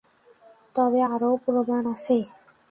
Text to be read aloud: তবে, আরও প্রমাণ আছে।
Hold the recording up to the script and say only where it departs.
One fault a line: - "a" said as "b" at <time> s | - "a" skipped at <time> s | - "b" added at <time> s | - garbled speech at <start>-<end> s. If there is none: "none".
none